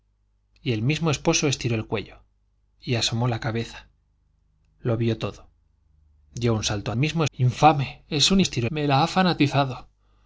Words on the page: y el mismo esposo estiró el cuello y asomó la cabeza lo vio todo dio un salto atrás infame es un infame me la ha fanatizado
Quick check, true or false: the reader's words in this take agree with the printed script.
false